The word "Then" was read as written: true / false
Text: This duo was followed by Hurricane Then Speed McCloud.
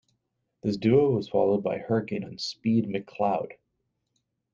true